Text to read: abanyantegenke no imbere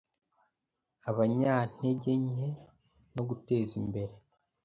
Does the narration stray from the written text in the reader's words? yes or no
yes